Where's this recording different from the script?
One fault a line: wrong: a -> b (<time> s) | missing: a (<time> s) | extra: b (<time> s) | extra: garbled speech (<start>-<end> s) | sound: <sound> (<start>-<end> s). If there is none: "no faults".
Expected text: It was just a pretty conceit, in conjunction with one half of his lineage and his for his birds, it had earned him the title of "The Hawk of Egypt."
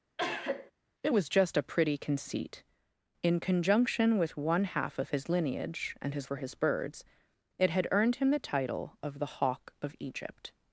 sound: cough (0.2-0.7 s)